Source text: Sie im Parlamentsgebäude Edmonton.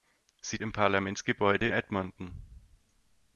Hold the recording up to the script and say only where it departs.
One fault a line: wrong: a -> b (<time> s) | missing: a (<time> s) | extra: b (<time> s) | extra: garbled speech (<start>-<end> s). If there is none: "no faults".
no faults